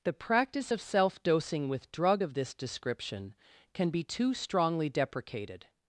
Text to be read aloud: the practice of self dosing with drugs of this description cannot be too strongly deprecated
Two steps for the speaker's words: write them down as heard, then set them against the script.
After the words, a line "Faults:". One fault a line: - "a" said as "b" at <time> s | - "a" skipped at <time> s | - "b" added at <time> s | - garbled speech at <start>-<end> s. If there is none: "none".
the practice of self dosing with drug of this description can be too strongly deprecated
Faults:
- "drugs" said as "drug" at 1.9 s
- "cannot" said as "can" at 3.7 s